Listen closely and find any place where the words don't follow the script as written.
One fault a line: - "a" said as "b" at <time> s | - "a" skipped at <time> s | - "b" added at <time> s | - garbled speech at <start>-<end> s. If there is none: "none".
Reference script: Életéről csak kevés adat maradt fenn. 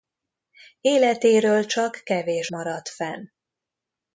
- "adat" skipped at 2.5 s